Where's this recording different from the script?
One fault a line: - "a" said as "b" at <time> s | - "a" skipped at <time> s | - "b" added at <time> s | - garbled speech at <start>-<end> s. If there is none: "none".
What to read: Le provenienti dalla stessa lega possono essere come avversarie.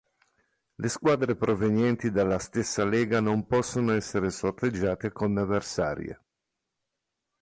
- "squadre" added at 0.9 s
- "non" added at 3.2 s
- "sorteggiate" added at 4.3 s